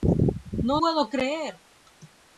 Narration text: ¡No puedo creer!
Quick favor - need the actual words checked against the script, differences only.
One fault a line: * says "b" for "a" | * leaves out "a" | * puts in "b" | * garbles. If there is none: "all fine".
all fine